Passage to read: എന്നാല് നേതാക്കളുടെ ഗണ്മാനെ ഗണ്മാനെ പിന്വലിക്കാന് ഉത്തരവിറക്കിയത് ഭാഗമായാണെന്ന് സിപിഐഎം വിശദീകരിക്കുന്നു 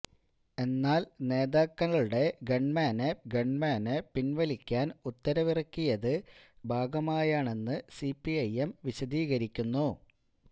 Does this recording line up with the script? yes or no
yes